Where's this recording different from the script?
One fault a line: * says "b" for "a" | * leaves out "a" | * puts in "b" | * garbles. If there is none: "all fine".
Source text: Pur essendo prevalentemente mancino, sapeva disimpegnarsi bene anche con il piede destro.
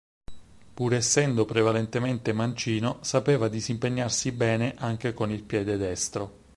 all fine